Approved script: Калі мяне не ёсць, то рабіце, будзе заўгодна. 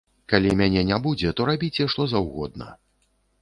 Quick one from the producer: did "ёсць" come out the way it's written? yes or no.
no